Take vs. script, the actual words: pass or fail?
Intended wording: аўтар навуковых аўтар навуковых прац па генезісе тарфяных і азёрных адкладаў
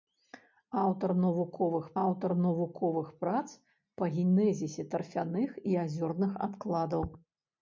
pass